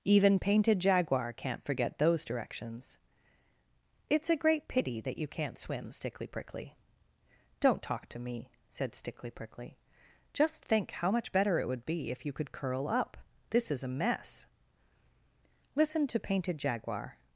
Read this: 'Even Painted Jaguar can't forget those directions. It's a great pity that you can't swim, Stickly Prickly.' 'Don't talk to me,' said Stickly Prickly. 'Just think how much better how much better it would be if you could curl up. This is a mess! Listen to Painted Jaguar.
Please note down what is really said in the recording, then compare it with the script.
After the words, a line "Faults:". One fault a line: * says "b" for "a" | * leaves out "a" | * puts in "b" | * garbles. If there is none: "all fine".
'Even Painted Jaguar can't forget those directions. It's a great pity that you can't swim, Stickly Prickly.' 'Don't talk to me,' said Stickly Prickly. 'Just think how much better it would be if you could curl up. This is a mess! Listen to Painted Jaguar.
Faults:
* leaves out "how much better"